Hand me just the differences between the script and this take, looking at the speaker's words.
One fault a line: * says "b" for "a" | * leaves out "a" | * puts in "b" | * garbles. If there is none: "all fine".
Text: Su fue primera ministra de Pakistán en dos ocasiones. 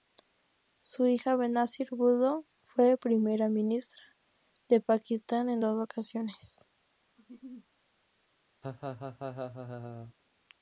* puts in "hija Benazir Bhutto"